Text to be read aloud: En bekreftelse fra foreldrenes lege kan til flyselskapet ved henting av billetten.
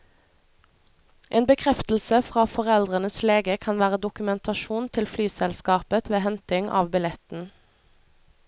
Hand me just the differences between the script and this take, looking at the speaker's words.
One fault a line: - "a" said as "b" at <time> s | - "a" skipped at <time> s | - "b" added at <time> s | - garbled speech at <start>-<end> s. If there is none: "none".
- "være dokumentasjon" added at 3.8 s